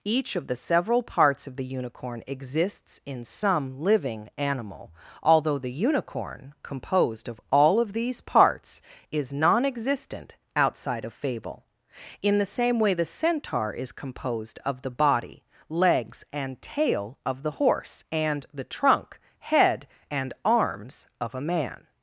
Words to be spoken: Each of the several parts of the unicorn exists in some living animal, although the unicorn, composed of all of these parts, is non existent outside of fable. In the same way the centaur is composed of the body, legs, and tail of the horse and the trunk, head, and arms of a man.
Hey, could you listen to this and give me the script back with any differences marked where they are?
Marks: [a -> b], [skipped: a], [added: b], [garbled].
Each of the several parts of the unicorn exists in some living animal, although the unicorn, composed of all of these parts, is non existent outside of fable. In the same way the centaur is composed of the body, legs, and tail of the horse and the trunk, head, and arms of a man.